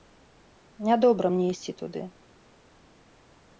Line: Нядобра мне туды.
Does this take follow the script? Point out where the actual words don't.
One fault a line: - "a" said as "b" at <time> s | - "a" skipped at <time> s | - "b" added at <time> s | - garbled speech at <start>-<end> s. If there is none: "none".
- "ісці" added at 1.6 s